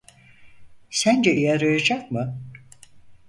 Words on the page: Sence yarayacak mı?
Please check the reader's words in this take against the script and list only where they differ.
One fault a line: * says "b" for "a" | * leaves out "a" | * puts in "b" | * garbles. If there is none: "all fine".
all fine